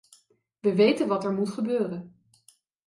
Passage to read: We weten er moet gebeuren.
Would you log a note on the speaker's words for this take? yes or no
yes